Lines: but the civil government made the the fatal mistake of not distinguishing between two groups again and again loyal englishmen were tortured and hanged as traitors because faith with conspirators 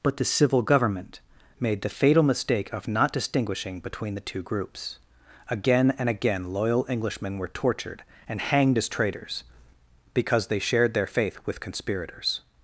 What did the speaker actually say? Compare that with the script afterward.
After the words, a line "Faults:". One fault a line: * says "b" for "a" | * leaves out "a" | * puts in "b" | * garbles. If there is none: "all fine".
but the civil government made the fatal mistake of not distinguishing between the two groups again and again loyal englishmen were tortured and hanged as traitors because they shared their faith with conspirators
Faults:
* leaves out "the"
* puts in "the"
* puts in "they shared their"